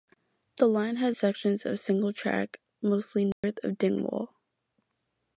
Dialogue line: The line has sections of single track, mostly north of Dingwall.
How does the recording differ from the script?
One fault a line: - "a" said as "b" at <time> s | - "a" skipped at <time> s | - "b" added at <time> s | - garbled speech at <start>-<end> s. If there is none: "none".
none